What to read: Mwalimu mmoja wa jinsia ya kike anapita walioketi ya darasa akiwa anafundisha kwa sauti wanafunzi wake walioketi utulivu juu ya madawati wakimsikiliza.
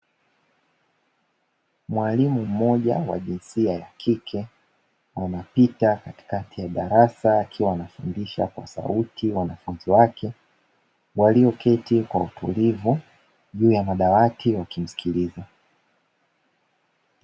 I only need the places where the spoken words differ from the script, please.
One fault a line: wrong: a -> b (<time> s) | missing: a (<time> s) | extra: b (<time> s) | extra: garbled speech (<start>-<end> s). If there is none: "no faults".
wrong: walioketi -> katikati (6.0 s)
extra: kwa (12.0 s)